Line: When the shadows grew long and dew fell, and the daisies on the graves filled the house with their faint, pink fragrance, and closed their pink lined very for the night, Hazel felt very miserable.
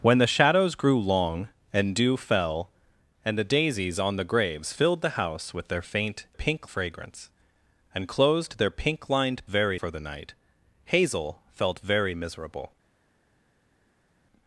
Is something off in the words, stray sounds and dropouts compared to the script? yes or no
no